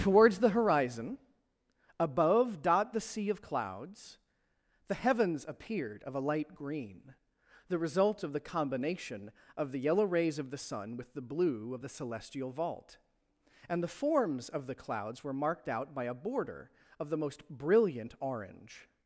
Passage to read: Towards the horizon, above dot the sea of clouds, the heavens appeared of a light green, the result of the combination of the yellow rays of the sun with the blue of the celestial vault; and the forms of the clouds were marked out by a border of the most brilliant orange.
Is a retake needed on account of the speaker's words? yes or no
no